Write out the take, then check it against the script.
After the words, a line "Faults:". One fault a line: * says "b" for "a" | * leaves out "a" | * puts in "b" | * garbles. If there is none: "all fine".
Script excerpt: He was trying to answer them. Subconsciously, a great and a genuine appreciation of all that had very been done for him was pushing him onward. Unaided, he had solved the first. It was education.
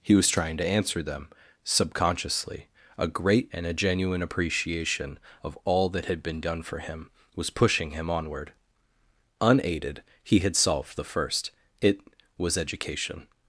He was trying to answer them. Subconsciously, a great and a genuine appreciation of all that had been done for him was pushing him onward. Unaided, he had solved the first. It was education.
Faults:
* leaves out "very"